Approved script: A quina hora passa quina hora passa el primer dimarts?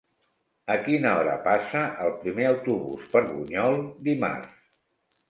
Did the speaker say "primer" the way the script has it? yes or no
no